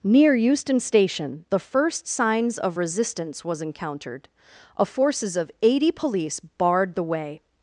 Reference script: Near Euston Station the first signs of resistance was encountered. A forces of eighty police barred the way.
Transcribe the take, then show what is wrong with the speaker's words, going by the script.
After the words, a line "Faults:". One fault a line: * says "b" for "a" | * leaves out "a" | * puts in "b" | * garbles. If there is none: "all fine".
Near Euston Station the first signs of resistance was encountered. A forces of eighty police barred the way.
Faults:
all fine